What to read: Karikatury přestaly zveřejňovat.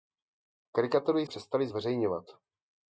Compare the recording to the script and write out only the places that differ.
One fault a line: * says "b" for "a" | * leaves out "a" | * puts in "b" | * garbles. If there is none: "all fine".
all fine